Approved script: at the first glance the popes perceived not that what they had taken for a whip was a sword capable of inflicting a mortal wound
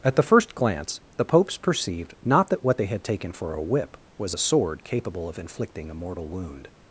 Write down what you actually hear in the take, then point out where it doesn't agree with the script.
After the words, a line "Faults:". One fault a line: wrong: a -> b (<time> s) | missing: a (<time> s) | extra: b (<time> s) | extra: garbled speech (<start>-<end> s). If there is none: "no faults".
at the first glance the popes perceived not that what they had taken for a whip was a sword capable of inflicting a mortal wound
Faults:
no faults